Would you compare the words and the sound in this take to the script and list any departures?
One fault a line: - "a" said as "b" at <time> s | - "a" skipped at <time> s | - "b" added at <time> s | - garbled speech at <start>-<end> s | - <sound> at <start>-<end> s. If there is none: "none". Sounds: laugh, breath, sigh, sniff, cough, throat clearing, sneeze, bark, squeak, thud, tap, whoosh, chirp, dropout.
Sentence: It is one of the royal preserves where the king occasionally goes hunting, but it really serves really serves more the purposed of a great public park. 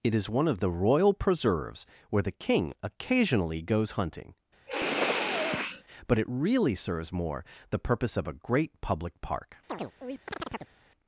- sniff at 4.7-5.8 s
- "really serves" skipped at 7.1 s
- "purposed" said as "purpose" at 7.8 s
- chirp at 9.7-10.8 s